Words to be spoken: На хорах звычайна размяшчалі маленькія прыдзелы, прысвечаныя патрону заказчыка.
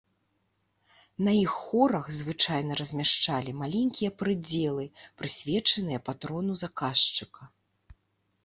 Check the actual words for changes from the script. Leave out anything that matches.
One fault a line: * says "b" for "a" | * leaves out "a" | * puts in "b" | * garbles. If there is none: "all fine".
* puts in "іх"